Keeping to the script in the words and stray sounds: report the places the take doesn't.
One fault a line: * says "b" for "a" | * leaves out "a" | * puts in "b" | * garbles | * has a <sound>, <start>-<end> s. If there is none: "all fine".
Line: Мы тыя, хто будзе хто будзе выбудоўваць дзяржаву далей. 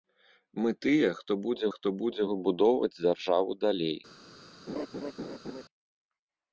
* has a laugh, 4.7-5.6 s